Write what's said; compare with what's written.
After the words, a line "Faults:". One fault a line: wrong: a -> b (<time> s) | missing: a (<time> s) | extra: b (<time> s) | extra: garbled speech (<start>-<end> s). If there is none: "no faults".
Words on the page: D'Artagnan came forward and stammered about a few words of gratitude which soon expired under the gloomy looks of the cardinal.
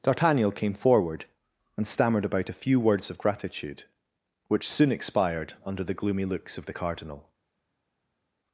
D'Artagnan came forward and stammered about a few words of gratitude which soon expired under the gloomy looks of the cardinal.
Faults:
no faults